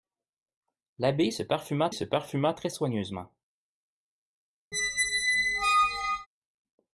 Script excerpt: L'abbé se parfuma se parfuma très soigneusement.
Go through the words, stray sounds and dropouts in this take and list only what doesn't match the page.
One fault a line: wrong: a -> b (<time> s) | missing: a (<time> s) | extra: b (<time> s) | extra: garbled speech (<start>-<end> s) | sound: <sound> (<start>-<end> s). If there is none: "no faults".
sound: squeak (4.7-6.3 s)